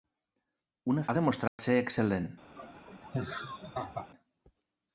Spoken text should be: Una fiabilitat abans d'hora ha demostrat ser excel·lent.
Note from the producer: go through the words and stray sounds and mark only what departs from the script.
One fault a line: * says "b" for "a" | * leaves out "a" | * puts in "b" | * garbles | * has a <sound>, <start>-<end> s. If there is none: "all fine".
* leaves out "fiabilitat abans d'hora"
* has a dropout, 1.5-1.6 s
* has a laugh, 2.6-4.1 s